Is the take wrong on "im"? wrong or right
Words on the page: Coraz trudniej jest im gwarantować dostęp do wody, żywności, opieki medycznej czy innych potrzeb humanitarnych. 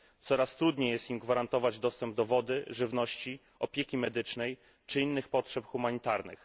right